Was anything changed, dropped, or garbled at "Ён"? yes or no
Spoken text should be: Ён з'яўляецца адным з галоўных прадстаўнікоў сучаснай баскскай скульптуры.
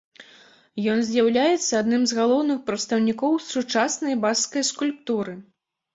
no